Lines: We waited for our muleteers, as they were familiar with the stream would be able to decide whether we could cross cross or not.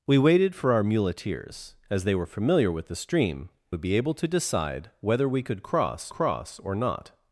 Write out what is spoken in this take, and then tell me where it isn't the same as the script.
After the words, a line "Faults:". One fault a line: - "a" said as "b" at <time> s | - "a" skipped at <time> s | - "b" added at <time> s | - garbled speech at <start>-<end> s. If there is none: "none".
We waited for our muleteers, as they were familiar with the stream would be able to decide whether we could cross cross or not.
Faults:
none